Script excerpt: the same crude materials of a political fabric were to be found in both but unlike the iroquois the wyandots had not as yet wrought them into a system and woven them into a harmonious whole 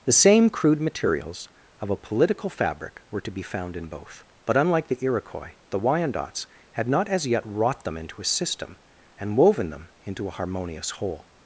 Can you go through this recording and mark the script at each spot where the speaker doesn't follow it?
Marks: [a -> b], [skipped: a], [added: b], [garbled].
the same crude materials of a political fabric were to be found in both but unlike the iroquois the wyandots had not as yet wrought them into a system and woven them into a harmonious whole